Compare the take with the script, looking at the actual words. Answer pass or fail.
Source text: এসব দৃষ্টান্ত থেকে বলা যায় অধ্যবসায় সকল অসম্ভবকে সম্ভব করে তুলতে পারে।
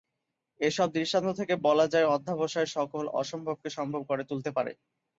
pass